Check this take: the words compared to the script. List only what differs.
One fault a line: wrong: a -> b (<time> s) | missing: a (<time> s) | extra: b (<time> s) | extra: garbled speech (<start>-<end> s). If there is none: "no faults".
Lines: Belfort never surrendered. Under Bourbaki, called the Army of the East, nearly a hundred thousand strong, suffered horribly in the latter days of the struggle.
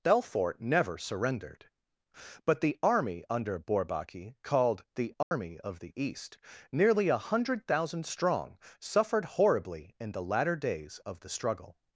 extra: But the army (2.4 s)